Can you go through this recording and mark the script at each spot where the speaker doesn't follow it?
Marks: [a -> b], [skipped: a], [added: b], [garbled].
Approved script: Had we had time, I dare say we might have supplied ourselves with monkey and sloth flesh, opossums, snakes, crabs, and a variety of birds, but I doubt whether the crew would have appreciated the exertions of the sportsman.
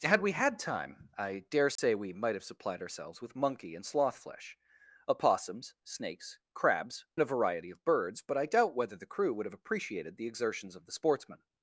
Had we had time, I dare say we might have supplied ourselves with monkey and sloth flesh, opossums, snakes, crabs, [skipped: and] a variety of birds, but I doubt whether the crew would have appreciated the exertions of the sportsman.